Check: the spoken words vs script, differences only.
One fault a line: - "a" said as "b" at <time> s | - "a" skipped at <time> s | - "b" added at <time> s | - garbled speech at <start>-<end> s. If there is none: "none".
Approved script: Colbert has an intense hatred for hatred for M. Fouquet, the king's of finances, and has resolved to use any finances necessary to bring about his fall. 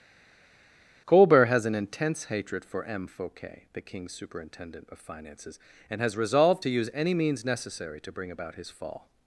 - "hatred for" skipped at 2.8 s
- "superintendent" added at 4.1 s
- "finances" said as "means" at 7.1 s